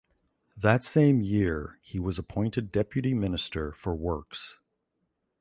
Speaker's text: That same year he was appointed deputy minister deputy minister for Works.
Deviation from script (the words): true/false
true